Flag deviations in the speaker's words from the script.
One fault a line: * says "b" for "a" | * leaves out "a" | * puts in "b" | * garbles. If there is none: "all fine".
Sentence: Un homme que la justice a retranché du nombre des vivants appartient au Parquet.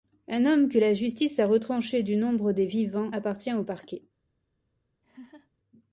all fine